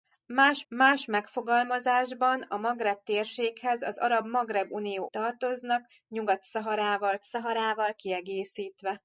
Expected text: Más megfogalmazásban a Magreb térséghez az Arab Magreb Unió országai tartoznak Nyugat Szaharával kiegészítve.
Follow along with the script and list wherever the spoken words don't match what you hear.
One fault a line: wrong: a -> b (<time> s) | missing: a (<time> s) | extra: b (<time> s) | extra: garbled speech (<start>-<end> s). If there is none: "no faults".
extra: más (0.7 s)
missing: országai (5.1 s)
extra: Szaharával (7.2 s)